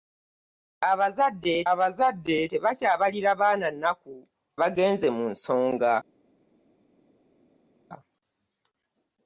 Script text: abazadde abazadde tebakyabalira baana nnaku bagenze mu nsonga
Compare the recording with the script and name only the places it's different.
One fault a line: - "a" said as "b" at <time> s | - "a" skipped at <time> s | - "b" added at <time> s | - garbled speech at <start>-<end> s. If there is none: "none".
none